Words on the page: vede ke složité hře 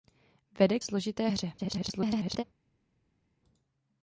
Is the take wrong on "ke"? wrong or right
wrong